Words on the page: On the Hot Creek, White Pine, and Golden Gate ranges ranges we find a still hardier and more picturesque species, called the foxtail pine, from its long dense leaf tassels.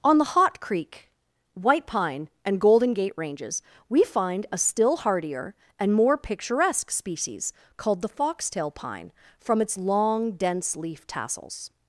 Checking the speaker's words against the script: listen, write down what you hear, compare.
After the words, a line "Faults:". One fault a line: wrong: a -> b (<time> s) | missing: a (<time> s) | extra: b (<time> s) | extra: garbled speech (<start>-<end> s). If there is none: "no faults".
On the Hot Creek, White Pine, and Golden Gate ranges we find a still hardier and more picturesque species, called the foxtail pine, from its long dense leaf tassels.
Faults:
missing: ranges (3.6 s)